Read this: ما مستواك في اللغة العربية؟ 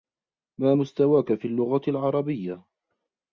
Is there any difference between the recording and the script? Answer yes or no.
no